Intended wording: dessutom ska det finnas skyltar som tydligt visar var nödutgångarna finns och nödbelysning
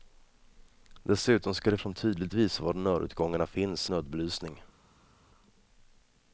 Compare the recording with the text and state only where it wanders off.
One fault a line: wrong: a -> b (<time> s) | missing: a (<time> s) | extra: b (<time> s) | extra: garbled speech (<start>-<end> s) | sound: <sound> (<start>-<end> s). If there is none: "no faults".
missing: finnas skyltar (1.8 s)
missing: och (3.9 s)